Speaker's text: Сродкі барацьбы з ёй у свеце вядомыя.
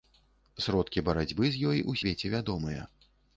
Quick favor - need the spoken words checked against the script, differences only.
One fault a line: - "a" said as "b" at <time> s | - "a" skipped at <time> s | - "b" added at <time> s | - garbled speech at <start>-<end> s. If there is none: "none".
none